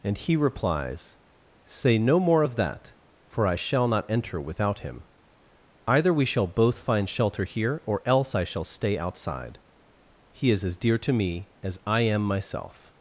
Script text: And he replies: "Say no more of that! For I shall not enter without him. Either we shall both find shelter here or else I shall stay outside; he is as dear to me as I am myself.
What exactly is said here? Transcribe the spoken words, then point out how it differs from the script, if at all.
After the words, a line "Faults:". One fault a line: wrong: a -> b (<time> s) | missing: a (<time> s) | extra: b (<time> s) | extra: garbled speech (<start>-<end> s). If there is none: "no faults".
And he replies: "Say no more of that! For I shall not enter without him. Either we shall both find shelter here or else I shall stay outside; he is as dear to me as I am myself.
Faults:
no faults